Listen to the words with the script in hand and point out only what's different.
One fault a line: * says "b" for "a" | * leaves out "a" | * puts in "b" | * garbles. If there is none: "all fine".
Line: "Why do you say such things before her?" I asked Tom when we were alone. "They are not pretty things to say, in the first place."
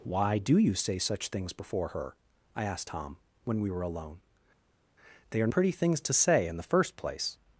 * leaves out "not"